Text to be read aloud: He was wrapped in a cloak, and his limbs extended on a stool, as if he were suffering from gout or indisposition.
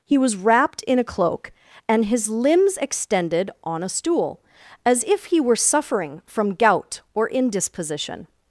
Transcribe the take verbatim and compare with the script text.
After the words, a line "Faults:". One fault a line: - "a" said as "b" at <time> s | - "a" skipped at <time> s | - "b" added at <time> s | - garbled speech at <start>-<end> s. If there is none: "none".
He was wrapped in a cloak, and his limbs extended on a stool, as if he were suffering from gout or indisposition.
Faults:
none